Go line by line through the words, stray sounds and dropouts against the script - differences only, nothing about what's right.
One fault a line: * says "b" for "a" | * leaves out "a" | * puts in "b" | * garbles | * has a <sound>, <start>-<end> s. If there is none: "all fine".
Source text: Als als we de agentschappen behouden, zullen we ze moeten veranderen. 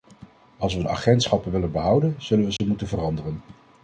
* leaves out "als"
* puts in "willen"
* has a dropout, 2.6-2.6 s